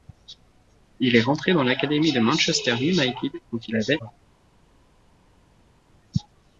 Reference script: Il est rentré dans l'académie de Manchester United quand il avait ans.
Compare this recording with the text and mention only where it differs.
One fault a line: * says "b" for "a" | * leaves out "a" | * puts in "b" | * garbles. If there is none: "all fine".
all fine